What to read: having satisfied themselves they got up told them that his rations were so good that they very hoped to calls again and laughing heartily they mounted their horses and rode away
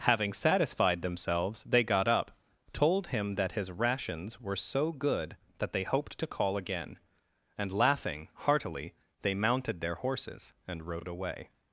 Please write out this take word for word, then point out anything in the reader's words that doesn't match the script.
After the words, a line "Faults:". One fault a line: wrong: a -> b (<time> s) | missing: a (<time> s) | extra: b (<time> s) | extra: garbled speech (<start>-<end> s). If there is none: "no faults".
having satisfied themselves they got up told him that his rations were so good that they hoped to call again and laughing heartily they mounted their horses and rode away
Faults:
wrong: them -> him (3.1 s)
missing: very (5.8 s)
wrong: calls -> call (6.3 s)